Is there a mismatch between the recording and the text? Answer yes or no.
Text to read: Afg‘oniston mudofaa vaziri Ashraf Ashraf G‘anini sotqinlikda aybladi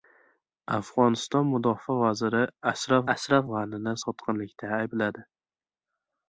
no